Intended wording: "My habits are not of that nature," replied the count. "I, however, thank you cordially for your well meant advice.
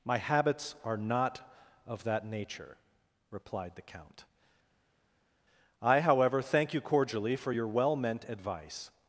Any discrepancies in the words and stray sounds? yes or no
no